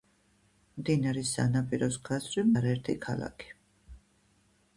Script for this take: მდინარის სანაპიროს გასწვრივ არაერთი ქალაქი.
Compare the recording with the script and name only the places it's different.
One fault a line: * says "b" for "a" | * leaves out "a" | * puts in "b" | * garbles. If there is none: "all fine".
all fine